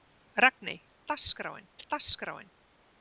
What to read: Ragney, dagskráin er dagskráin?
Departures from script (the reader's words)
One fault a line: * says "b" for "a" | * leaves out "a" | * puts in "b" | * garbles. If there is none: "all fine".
all fine